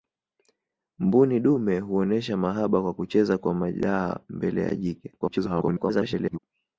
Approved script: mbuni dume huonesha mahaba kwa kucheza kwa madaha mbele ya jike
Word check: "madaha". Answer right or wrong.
right